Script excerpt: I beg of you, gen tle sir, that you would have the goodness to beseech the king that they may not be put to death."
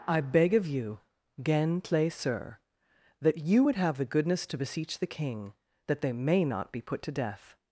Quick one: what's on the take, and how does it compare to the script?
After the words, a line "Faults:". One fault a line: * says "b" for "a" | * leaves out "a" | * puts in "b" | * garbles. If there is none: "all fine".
I beg of you, gen tle sir, that you would have the goodness to beseech the king that they may not be put to death."
Faults:
all fine